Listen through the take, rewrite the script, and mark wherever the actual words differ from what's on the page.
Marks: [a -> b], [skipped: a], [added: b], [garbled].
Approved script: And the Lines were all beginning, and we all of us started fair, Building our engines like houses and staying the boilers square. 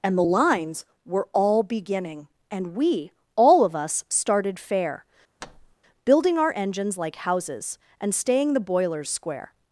And the Lines were all beginning, and we all of us started fair, Building our engines like houses and staying the boilers square.